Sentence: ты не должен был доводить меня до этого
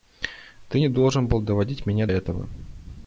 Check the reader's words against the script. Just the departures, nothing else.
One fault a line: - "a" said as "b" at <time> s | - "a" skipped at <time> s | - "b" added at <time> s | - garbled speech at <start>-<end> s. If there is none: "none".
- "до" skipped at 2.1 s